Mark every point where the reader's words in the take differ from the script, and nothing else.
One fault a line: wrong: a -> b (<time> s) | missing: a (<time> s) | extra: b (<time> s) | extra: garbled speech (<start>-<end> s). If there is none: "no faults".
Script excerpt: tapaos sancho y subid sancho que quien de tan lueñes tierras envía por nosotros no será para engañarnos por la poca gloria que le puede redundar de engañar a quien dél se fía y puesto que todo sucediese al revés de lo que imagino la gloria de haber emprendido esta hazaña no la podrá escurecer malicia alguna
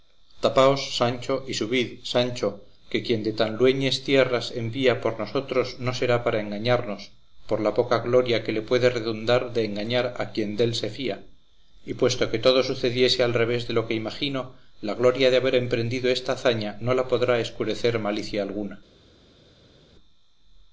no faults